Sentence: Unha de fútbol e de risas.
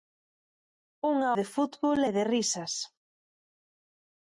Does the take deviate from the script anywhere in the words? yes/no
no